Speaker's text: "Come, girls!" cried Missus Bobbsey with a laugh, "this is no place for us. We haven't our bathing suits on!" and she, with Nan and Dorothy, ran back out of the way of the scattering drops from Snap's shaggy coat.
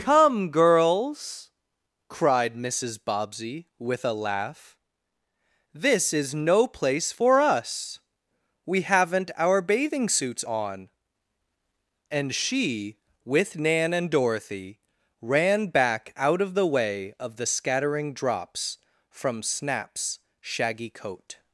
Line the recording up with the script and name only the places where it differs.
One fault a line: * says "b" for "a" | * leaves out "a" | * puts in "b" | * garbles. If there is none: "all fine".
all fine